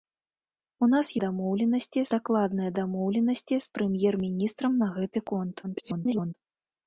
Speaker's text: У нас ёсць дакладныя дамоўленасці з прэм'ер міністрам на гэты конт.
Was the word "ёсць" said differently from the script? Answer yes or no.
yes